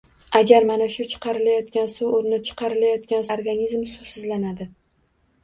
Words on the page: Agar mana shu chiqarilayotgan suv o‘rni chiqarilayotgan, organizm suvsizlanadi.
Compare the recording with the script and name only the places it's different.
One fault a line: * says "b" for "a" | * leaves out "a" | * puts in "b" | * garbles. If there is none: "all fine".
all fine